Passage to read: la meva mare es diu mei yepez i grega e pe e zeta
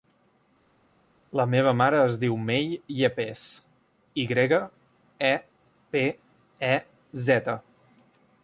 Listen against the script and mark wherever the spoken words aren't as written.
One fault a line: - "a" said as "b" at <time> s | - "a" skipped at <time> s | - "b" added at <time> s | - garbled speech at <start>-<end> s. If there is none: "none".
none